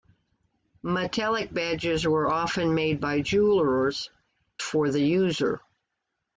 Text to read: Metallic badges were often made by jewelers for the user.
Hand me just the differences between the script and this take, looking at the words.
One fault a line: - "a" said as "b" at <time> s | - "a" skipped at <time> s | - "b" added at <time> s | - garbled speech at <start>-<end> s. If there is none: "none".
none